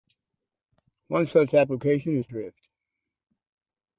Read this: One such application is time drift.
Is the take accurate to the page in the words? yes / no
no